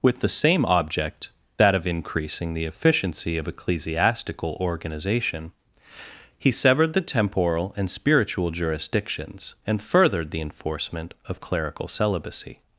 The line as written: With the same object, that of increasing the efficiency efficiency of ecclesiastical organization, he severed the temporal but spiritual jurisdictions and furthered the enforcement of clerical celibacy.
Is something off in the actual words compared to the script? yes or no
yes